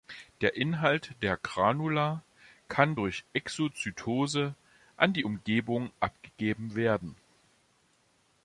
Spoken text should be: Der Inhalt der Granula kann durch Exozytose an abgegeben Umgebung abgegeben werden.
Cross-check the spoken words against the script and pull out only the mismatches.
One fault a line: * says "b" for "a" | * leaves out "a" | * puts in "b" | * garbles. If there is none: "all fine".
* says "die" for "abgegeben"